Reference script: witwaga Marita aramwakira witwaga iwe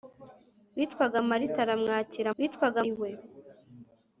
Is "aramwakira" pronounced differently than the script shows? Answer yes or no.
no